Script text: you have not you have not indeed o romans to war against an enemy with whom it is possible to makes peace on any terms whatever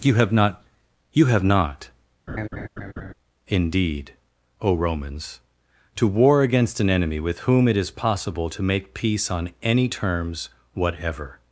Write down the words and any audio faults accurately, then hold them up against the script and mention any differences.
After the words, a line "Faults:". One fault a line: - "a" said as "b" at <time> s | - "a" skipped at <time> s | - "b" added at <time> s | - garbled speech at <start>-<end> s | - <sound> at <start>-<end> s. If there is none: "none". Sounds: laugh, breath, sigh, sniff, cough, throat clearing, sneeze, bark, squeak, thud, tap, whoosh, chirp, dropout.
you have not you have not indeed o romans to war against an enemy with whom it is possible to make peace on any terms whatever
Faults:
- laugh at 2.3-3.1 s
- "makes" said as "make" at 8.6 s